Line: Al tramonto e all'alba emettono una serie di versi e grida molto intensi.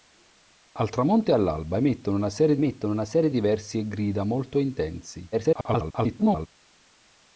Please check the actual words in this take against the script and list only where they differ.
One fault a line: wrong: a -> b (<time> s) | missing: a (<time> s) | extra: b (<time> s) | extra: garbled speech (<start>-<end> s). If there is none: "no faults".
extra: emettono una serie (2.5 s)
extra: garbled speech (5.3-6.5 s)